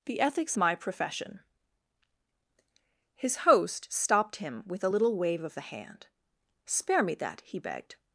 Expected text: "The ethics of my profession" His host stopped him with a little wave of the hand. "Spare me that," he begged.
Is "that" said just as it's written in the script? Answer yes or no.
yes